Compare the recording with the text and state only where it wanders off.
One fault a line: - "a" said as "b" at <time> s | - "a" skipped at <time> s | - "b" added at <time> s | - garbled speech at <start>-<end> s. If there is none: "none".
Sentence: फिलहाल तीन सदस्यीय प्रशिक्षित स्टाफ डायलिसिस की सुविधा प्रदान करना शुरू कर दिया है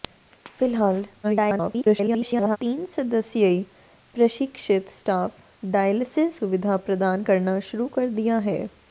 - garbled speech at 1.2-2.6 s
- "की" skipped at 6.4 s